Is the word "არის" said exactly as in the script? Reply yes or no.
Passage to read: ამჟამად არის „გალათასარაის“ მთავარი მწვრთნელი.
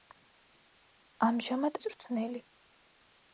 no